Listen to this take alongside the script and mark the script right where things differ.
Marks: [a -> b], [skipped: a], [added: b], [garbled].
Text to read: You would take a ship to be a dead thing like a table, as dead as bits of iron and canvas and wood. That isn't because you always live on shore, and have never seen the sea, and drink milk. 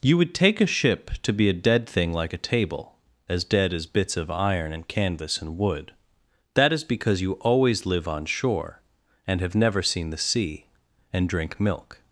You would take a ship to be a dead thing like a table, as dead as bits of iron and canvas and wood. That [isn't -> is] because you always live on shore, and have never seen the sea, and drink milk.